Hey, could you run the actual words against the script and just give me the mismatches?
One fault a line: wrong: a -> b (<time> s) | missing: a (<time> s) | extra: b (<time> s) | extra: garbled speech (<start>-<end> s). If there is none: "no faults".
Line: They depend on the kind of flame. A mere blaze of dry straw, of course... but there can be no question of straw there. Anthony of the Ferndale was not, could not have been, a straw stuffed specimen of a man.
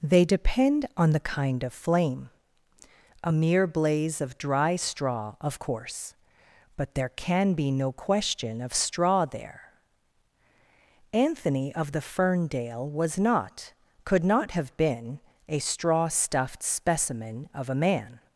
no faults